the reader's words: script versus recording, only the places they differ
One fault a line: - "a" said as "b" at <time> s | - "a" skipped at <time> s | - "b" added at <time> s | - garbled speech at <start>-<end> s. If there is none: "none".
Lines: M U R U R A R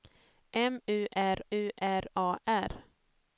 none